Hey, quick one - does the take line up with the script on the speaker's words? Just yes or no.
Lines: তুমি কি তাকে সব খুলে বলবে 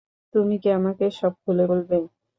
no